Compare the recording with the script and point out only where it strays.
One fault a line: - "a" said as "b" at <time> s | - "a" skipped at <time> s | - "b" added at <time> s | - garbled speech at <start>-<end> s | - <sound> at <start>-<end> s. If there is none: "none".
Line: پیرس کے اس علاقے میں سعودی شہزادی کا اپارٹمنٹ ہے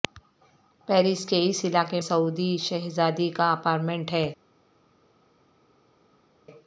- "میں" skipped at 2.0 s